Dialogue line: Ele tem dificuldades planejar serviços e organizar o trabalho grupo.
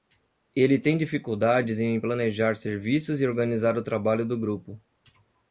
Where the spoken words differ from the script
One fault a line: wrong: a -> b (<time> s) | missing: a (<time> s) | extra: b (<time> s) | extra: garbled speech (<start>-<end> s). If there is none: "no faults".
extra: em (1.8 s)
extra: do (4.2 s)